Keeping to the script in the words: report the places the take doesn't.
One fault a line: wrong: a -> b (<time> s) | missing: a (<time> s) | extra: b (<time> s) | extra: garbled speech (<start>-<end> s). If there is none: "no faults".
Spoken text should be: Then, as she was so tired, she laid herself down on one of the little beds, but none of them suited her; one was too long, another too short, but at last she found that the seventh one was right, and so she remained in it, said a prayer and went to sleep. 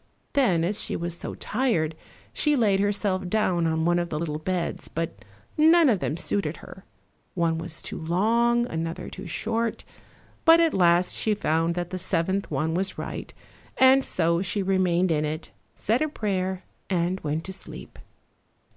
no faults